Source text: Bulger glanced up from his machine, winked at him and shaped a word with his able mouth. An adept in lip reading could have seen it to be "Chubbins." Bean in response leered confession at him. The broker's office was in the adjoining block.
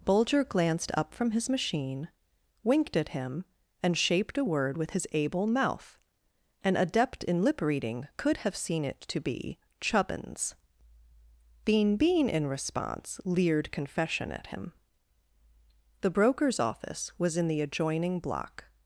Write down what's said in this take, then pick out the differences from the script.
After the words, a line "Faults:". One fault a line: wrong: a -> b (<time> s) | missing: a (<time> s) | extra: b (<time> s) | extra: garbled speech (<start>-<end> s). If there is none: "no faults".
Bulger glanced up from his machine, winked at him and shaped a word with his able mouth. An adept in lip reading could have seen it to be "Chubbins." Bean Bean in response leered confession at him. The broker's office was in the adjoining block.
Faults:
extra: Bean (12.0 s)